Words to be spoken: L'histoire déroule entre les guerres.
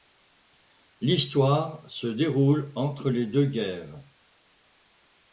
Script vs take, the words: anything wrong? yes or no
yes